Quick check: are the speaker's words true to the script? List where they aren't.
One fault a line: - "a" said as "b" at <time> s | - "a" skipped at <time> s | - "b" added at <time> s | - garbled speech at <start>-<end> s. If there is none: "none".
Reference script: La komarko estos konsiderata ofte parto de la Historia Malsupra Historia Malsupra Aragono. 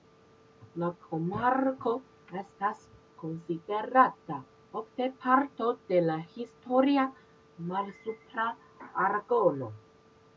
- "estos" said as "estas" at 2.4 s
- "Historia Malsupra" skipped at 8.5 s